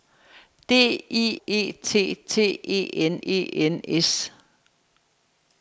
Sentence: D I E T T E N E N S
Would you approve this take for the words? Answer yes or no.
yes